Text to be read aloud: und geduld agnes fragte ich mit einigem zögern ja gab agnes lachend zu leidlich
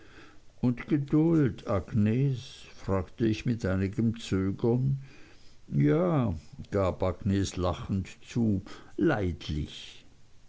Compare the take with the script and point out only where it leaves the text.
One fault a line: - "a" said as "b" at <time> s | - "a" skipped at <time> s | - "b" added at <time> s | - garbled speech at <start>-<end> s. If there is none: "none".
none